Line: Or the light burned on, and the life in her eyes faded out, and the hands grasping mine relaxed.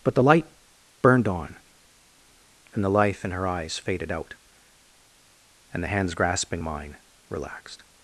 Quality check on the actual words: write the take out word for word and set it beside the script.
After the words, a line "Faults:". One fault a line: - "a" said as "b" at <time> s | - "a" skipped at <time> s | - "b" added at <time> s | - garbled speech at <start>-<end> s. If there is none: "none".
But the light burned on, and the life in her eyes faded out, and the hands grasping mine relaxed.
Faults:
- "Or" said as "But" at 0.0 s